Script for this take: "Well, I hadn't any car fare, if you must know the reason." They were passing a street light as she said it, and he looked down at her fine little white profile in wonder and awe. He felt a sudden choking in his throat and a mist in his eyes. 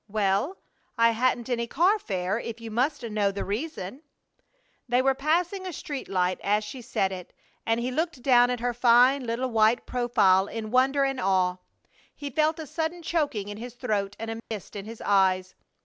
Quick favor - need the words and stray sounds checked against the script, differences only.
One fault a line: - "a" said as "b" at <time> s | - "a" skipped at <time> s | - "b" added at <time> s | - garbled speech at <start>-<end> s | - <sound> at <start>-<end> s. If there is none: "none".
- dropout at 14.4-14.5 s